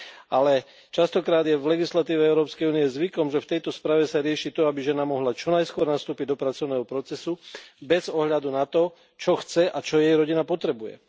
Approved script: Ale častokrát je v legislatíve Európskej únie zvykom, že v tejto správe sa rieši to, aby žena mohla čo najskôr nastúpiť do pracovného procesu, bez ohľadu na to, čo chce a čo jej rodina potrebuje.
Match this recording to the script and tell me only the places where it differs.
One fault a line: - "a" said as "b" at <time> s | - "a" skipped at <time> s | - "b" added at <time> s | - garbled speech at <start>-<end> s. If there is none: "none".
none